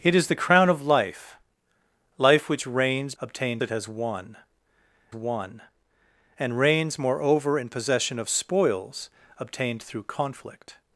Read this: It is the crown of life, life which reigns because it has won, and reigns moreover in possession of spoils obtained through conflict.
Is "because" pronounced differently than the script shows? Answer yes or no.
yes